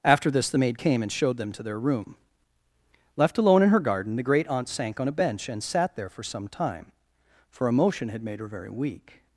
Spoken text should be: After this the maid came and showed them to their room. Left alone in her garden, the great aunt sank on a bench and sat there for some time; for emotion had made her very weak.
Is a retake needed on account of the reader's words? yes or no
no